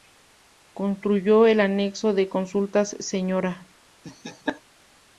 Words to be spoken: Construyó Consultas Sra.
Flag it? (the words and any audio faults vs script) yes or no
yes